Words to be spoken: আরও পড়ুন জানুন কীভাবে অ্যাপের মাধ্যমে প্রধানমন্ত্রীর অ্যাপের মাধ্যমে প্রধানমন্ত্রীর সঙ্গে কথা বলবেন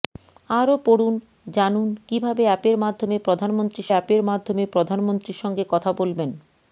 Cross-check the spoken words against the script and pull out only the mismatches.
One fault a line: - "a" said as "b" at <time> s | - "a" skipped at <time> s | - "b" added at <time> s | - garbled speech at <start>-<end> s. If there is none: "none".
none